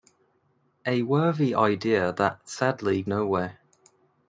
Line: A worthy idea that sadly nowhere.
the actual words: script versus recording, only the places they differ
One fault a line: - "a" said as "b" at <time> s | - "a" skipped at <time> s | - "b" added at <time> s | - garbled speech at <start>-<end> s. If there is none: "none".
none